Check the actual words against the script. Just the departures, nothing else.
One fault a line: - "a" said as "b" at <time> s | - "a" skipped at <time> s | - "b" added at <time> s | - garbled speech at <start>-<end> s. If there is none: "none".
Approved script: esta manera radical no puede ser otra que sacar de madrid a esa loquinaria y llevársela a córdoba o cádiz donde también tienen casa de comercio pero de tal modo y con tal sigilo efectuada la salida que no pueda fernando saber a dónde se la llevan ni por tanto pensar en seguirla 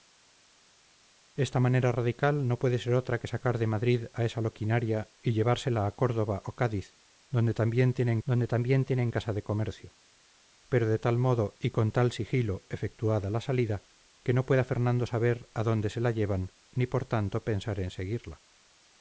- "donde también tienen" added at 8.2 s